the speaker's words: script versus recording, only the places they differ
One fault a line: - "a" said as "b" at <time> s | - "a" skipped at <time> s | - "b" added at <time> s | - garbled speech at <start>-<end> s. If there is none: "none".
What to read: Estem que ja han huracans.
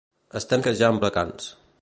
none